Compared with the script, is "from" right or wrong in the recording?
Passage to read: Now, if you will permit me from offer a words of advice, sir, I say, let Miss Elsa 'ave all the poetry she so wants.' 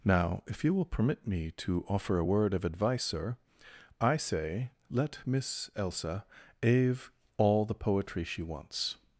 wrong